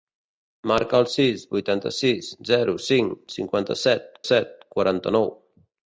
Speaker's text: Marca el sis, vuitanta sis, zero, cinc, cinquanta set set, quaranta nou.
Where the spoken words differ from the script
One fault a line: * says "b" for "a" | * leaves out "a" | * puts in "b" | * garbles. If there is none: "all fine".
all fine